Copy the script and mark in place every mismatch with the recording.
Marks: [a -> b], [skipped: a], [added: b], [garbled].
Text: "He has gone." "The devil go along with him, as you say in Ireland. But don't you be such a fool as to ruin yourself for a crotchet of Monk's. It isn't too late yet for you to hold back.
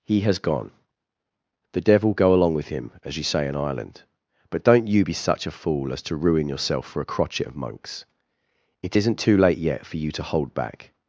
"He has gone." "The devil go along with him, as you say in Ireland. But don't you be such a fool as to ruin yourself for a crotchet of Monk's. It isn't too late yet for you to hold back.